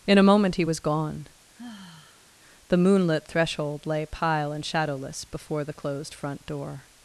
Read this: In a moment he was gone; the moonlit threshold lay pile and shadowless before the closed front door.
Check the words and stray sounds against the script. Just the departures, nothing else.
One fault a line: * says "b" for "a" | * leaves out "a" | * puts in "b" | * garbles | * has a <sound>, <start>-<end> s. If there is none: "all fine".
* has a sigh, 1.6-2.3 s